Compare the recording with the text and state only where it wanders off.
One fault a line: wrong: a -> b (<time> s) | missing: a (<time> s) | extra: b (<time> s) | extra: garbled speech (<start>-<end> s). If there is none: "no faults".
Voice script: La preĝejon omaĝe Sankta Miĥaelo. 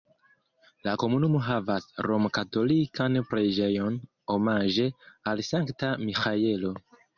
extra: komunumo havas romkatolikan (1.0 s)
extra: al (5.3 s)